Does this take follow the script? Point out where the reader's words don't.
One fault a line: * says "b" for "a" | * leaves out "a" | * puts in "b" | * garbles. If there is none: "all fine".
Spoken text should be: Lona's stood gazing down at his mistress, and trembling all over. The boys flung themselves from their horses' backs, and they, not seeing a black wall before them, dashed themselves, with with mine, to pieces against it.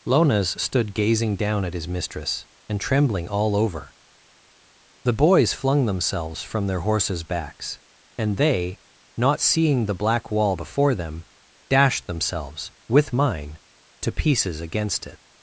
* says "the" for "a"
* leaves out "with"